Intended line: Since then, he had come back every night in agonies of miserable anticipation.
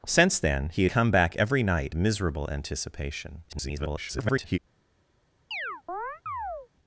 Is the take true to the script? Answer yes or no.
no